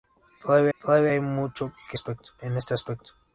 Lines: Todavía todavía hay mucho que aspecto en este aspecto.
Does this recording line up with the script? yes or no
yes